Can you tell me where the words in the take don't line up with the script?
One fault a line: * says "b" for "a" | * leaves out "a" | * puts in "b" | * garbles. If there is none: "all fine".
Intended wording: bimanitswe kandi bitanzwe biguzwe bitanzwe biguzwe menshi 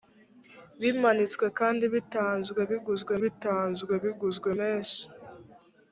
all fine